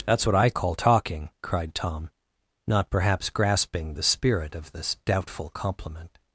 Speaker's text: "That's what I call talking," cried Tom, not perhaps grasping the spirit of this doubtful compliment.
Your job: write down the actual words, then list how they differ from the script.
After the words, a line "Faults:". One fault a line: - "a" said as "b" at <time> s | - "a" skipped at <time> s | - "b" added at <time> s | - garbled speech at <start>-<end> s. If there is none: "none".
"That's what I call talking," cried Tom, not perhaps grasping the spirit of this doubtful compliment.
Faults:
none